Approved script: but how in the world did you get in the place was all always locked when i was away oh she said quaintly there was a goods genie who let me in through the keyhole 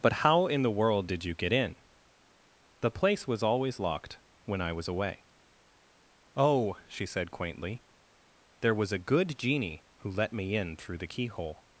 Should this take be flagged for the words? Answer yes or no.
yes